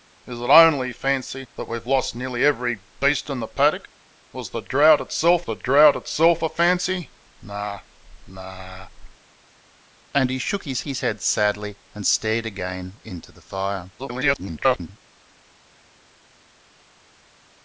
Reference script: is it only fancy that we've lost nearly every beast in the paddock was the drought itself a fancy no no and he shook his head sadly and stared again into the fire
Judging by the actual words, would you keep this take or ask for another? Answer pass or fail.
fail